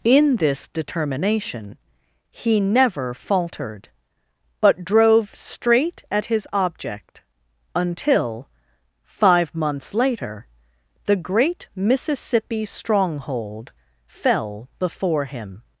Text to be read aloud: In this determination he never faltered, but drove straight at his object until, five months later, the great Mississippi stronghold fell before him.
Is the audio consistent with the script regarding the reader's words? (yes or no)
yes